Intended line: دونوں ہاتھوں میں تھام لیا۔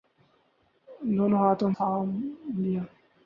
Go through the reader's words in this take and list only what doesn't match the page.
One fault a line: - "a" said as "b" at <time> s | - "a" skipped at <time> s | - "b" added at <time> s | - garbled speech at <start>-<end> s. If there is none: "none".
- "میں" skipped at 1.7 s